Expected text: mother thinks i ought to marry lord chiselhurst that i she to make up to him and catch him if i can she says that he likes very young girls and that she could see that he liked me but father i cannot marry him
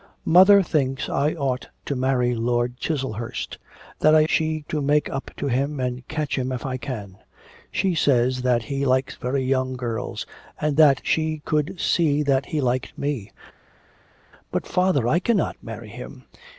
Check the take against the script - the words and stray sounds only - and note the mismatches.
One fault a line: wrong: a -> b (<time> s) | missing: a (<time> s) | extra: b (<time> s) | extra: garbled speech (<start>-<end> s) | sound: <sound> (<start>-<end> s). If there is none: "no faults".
no faults